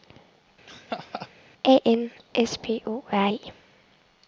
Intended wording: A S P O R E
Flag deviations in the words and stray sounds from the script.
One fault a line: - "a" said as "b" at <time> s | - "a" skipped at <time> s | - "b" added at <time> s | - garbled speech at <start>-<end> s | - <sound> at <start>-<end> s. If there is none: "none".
- laugh at 0.7-1.3 s
- "N" added at 1.8 s